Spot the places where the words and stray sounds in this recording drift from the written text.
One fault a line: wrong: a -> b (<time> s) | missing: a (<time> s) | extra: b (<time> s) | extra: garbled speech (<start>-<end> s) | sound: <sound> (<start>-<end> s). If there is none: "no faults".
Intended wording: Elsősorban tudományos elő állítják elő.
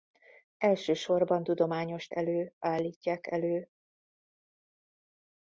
no faults